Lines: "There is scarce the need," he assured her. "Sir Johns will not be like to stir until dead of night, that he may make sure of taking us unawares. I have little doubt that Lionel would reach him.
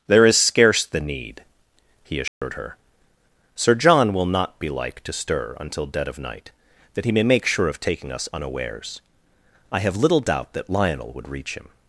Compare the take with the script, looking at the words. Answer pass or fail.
fail